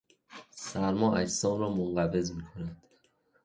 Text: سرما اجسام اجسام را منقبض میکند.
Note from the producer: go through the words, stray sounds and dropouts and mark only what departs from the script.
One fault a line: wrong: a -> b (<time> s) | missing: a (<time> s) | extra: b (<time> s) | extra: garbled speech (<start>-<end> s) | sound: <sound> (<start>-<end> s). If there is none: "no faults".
missing: اجسام (1.6 s)